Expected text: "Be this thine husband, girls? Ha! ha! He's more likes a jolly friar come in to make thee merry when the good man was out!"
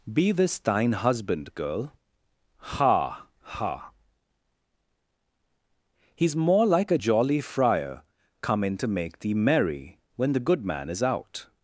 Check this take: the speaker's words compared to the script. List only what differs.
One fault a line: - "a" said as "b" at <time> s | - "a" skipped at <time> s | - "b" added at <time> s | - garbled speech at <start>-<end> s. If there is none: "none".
- "girls" said as "girl" at 1.6 s
- "likes" said as "like" at 6.7 s
- "was" said as "is" at 10.9 s